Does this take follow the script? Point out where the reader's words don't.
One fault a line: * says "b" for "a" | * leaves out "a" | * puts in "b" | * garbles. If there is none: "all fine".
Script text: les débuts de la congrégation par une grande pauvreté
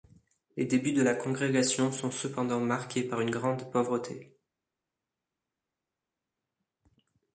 * puts in "sont cependant marqués"